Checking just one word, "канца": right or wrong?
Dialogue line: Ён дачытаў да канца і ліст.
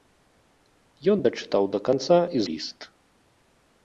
right